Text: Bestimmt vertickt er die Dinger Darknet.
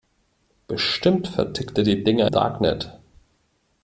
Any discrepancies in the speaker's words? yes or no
no